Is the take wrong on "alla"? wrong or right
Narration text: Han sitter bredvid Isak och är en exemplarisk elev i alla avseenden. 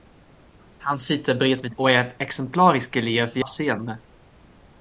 wrong